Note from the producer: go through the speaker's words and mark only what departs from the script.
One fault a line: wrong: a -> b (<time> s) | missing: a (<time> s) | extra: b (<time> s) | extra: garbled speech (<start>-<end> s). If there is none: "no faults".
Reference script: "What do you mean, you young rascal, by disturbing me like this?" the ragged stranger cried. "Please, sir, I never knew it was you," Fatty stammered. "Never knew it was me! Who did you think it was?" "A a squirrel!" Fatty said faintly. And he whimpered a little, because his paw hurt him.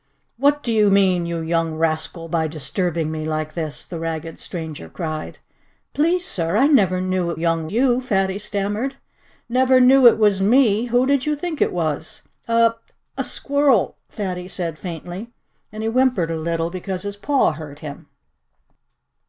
wrong: was -> young (7.3 s)